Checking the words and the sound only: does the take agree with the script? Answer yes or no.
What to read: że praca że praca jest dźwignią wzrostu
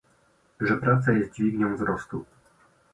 no